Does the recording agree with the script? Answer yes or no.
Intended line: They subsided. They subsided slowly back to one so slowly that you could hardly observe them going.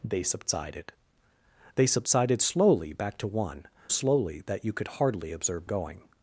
no